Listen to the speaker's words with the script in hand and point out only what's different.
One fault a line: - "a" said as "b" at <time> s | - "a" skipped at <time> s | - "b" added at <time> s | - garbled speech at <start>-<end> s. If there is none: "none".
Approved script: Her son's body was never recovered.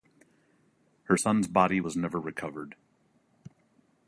none